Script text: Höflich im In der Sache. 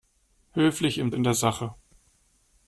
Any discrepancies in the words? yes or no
no